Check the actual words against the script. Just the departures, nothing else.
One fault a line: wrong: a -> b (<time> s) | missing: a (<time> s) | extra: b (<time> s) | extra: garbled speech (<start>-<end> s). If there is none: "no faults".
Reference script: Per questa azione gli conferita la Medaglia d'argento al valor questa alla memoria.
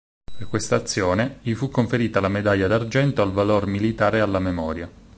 extra: fu (1.5 s)
wrong: questa -> militare (3.7 s)